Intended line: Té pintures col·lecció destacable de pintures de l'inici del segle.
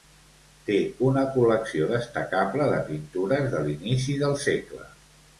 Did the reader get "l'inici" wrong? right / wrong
right